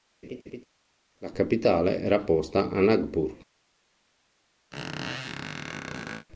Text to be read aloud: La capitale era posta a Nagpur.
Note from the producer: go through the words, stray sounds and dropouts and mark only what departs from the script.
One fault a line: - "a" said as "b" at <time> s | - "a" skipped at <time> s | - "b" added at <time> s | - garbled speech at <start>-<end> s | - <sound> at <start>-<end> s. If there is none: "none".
- laugh at 0.2-0.6 s
- squeak at 4.7-6.3 s